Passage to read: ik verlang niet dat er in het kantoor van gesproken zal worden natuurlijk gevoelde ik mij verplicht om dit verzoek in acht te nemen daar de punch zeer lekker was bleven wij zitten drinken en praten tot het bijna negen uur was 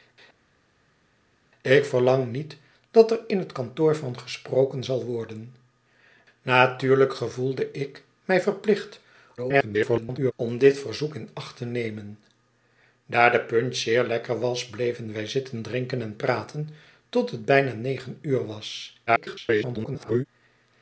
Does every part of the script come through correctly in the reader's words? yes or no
no